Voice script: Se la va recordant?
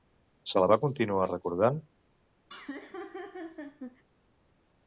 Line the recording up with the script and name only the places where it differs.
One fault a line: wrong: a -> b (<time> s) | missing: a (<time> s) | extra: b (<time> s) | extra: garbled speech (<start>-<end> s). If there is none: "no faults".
extra: continuar (0.8 s)